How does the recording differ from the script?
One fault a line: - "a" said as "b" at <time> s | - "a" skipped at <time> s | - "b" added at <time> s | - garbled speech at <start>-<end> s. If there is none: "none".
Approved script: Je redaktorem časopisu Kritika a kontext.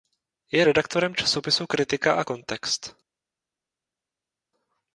none